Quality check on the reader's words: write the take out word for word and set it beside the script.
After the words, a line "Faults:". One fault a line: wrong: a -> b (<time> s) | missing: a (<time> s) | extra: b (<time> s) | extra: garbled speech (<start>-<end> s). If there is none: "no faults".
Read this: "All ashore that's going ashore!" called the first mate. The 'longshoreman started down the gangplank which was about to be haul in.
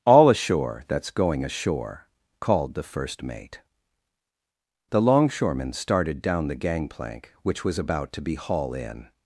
"All ashore that's going ashore!" called the first mate. The 'longshoreman started down the gangplank which was about to be haul in.
Faults:
no faults